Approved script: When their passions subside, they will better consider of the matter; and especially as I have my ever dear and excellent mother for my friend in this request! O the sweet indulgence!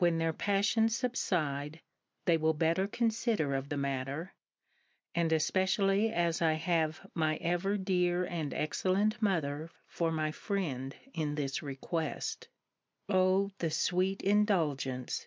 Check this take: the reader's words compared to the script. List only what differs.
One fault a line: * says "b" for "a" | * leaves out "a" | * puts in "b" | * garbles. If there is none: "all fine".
all fine